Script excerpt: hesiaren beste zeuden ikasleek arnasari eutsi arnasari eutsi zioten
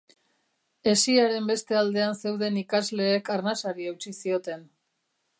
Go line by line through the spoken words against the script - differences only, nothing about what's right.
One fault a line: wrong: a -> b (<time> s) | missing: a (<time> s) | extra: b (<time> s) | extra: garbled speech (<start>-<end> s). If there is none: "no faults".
extra: aldean (1.8 s)
missing: arnasari eutsi (4.1 s)